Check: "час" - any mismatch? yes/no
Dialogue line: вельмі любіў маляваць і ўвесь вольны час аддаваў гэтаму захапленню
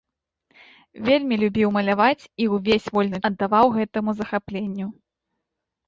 yes